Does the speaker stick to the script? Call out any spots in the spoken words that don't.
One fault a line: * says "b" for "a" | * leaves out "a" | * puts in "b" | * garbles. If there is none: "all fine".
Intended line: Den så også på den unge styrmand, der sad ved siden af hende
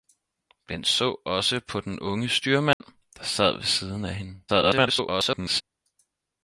* garbles